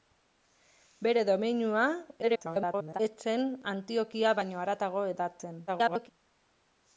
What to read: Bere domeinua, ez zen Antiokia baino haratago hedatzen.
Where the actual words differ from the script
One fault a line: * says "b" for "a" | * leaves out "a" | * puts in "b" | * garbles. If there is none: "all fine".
* garbles
* garbles